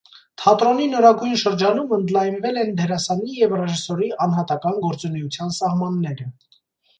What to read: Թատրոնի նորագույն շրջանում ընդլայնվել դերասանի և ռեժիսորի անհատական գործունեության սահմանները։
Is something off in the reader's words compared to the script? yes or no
yes